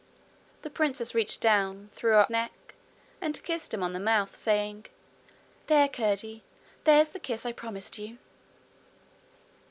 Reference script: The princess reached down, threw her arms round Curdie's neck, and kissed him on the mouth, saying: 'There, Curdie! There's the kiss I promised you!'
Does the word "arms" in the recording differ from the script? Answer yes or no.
yes